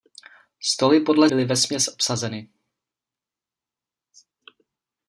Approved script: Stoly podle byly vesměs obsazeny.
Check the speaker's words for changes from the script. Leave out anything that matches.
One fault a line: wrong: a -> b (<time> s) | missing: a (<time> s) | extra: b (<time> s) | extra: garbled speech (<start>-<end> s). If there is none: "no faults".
no faults